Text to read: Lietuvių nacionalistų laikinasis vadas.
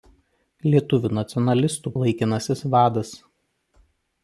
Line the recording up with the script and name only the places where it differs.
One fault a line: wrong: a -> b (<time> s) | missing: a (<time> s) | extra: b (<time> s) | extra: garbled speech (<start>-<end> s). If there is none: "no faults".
no faults